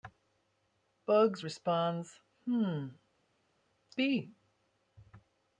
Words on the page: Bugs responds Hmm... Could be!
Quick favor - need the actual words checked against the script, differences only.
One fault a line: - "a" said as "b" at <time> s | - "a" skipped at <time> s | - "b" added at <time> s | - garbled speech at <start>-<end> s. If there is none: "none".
- "Could" skipped at 2.9 s